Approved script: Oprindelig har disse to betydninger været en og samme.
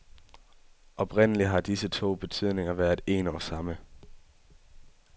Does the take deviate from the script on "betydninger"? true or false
false